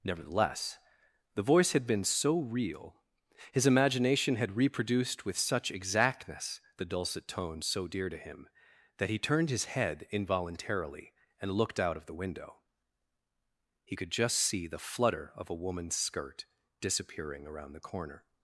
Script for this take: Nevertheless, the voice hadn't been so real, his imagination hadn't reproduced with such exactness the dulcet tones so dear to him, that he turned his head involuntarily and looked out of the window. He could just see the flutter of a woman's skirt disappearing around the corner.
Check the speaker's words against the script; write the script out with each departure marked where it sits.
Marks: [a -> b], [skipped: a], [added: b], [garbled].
Nevertheless, the voice [hadn't -> had] been so real, his imagination [hadn't -> had] reproduced with such exactness the dulcet tones so dear to him, that he turned his head involuntarily and looked out of the window. He could just see the flutter of a woman's skirt disappearing around the corner.